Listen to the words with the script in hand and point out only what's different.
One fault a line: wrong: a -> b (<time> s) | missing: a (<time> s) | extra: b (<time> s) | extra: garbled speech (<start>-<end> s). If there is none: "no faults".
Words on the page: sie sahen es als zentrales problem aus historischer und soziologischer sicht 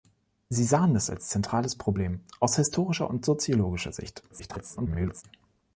extra: garbled speech (4.3-5.2 s)